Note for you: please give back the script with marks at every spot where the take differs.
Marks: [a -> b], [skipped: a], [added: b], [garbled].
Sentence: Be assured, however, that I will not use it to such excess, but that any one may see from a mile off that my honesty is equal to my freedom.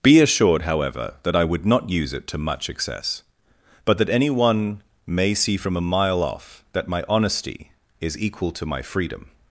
Be assured, however, that I [will -> would] not use it to [such -> much] excess, but that any one may see from a mile off that my honesty is equal to my freedom.